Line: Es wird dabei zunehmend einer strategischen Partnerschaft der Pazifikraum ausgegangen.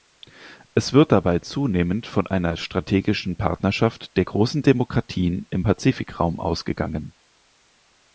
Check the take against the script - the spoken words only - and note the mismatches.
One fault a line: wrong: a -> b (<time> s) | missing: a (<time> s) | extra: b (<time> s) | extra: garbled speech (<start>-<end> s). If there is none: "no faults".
extra: von (2.1 s)
extra: großen Demokratien im (4.2 s)